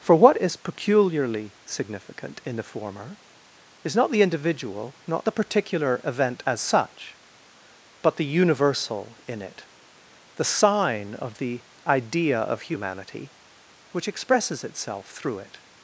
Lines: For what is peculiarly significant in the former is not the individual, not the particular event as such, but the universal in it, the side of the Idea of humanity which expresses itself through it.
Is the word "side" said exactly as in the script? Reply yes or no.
no